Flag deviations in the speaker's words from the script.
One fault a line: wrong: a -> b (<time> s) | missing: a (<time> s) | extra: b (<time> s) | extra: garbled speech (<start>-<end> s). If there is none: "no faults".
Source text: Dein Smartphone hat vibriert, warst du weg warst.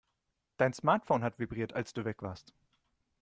wrong: warst -> als (1.7 s)